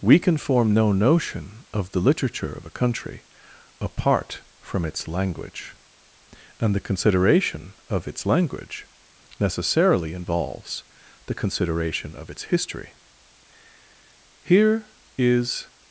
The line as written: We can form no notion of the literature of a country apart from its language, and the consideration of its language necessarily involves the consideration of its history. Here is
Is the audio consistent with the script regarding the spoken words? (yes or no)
yes